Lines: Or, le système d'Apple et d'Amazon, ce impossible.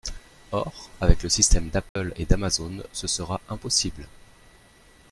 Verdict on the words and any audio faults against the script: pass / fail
fail